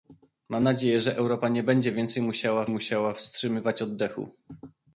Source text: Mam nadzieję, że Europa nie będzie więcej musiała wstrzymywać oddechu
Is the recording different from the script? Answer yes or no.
yes